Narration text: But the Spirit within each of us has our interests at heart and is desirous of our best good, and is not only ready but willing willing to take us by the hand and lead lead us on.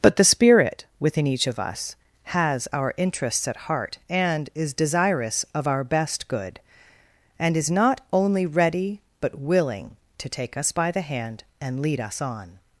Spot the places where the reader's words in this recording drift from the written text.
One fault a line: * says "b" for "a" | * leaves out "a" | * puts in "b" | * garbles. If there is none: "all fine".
* leaves out "willing"
* leaves out "lead"